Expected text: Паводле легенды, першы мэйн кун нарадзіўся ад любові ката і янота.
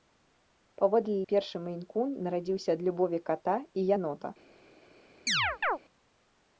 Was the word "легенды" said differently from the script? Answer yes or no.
yes